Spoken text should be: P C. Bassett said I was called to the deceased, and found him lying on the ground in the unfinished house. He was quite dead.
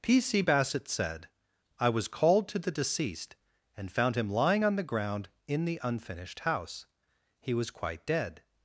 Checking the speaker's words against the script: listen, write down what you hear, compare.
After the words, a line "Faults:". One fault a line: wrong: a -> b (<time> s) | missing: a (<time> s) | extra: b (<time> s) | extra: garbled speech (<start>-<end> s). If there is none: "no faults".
P C. Bassett said I was called to the deceased, and found him lying on the ground in the unfinished house. He was quite dead.
Faults:
no faults